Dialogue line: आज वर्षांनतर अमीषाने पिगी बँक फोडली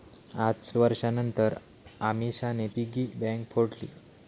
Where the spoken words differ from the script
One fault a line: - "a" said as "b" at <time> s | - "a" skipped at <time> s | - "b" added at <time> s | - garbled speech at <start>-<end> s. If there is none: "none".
none